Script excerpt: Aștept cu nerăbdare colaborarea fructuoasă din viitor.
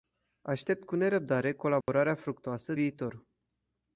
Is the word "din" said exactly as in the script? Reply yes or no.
no